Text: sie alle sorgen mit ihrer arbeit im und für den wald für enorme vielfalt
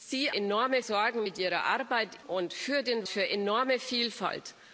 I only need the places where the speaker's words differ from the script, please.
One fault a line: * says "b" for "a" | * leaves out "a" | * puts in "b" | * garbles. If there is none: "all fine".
* says "enorme" for "alle"
* leaves out "im"
* leaves out "wald"